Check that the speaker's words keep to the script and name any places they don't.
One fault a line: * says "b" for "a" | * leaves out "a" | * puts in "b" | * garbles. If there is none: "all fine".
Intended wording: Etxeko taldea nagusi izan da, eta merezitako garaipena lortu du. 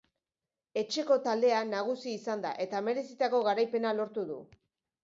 all fine